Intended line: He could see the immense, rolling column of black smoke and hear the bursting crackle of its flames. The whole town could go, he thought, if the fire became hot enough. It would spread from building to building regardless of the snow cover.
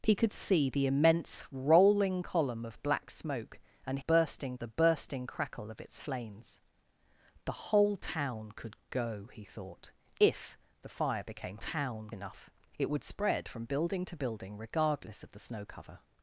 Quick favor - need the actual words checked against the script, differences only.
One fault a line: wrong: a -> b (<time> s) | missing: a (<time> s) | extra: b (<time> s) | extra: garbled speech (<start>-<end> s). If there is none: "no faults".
wrong: hear -> bursting (4.0 s)
wrong: hot -> town (11.6 s)